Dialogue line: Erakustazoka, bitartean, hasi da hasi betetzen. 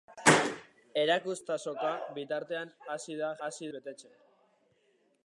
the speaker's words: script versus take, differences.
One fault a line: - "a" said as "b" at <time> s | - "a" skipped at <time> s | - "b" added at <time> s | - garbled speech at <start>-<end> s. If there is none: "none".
none